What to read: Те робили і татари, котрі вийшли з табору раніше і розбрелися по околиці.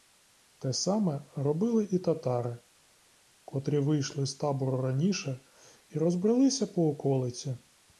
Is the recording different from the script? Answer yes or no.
yes